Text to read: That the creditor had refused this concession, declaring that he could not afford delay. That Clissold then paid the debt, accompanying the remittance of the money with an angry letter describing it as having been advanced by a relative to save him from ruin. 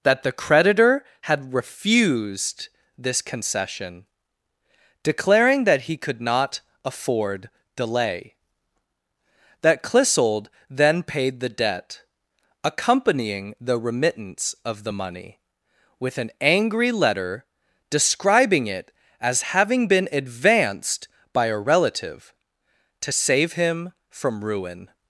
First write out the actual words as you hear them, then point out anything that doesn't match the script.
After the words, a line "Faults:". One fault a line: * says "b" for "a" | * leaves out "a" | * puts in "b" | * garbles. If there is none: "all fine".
That the creditor had refused this concession, declaring that he could not afford delay. That Clissold then paid the debt, accompanying the remittance of the money with an angry letter describing it as having been advanced by a relative to save him from ruin.
Faults:
all fine